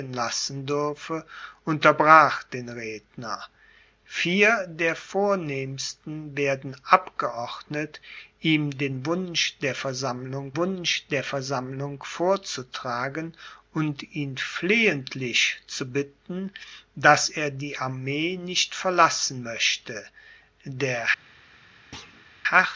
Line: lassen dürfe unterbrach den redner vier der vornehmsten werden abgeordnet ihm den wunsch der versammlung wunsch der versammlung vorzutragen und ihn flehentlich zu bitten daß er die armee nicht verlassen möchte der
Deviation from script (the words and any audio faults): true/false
true